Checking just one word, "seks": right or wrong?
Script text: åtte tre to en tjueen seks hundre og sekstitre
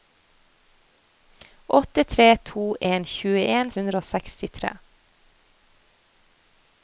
wrong